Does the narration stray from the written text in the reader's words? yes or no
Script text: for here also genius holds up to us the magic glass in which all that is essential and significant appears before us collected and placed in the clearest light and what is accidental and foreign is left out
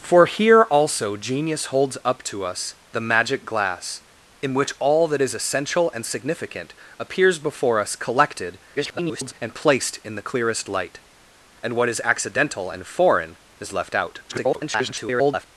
yes